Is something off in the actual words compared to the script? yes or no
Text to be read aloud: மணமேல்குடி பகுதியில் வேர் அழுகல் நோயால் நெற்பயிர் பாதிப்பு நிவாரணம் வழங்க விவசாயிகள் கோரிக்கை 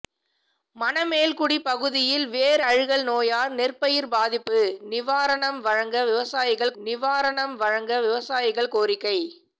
yes